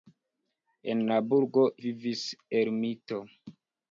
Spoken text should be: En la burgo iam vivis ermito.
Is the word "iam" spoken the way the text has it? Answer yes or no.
no